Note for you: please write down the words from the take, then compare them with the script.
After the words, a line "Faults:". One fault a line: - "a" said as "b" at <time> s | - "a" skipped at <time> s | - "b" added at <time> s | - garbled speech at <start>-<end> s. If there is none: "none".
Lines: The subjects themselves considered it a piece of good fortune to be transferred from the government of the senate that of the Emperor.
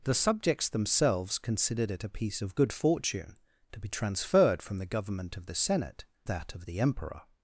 The subjects themselves considered it a piece of good fortune to be transferred from the government of the senate that of the Emperor.
Faults:
none